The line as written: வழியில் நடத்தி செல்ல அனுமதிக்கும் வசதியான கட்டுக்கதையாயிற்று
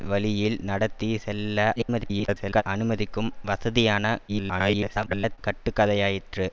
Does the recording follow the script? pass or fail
fail